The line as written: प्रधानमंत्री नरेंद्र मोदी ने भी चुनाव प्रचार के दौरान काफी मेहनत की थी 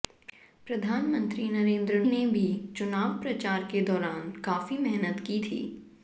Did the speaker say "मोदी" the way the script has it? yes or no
no